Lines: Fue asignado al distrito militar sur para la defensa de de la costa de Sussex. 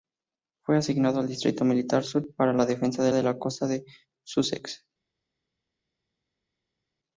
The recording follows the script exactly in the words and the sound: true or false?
true